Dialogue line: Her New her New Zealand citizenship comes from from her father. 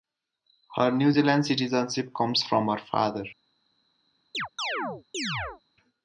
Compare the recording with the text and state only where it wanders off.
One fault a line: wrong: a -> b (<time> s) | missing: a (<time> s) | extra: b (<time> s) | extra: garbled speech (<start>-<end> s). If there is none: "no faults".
missing: her New (1.1 s)
missing: from (2.7 s)